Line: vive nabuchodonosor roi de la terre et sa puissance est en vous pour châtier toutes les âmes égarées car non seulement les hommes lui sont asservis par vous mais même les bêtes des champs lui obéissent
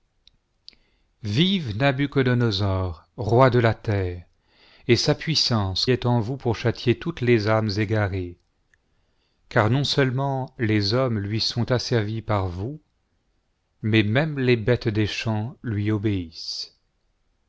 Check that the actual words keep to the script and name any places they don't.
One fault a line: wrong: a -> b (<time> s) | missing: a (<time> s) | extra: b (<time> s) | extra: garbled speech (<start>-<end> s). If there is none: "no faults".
no faults